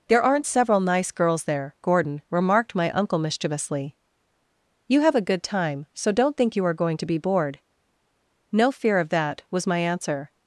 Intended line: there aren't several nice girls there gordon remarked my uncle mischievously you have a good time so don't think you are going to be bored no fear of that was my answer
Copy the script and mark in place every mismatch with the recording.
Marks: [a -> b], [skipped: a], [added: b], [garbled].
there aren't several nice girls there gordon remarked my uncle mischievously you have a good time so don't think you are going to be bored no fear of that was my answer